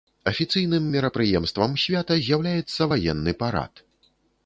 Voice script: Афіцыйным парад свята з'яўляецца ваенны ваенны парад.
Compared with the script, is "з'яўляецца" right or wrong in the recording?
right